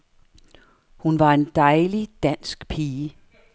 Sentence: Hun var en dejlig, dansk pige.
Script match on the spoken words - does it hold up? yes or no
yes